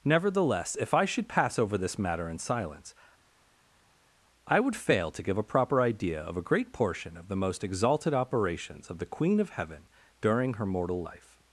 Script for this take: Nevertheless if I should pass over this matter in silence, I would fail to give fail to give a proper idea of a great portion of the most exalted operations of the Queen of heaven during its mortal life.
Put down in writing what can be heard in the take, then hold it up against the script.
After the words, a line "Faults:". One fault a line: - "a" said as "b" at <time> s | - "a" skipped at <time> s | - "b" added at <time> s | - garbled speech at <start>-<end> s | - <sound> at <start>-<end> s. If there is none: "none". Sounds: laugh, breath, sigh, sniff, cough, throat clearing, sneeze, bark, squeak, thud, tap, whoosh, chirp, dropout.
Nevertheless if I should pass over this matter in silence, I would fail to give a proper idea of a great portion of the most exalted operations of the Queen of heaven during her mortal life.
Faults:
- "fail to give" skipped at 5.4 s
- "its" said as "her" at 10.5 s